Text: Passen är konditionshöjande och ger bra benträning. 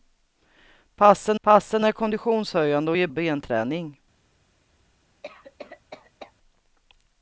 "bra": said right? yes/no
no